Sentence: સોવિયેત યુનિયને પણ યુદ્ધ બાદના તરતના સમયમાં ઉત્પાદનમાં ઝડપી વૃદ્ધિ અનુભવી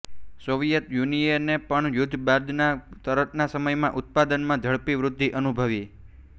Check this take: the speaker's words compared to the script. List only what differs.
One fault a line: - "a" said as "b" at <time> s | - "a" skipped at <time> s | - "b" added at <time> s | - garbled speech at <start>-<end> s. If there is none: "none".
none